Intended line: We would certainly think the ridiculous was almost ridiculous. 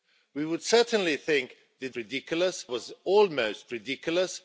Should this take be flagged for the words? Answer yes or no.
no